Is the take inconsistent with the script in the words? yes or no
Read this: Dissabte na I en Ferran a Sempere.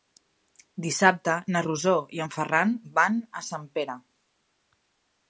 yes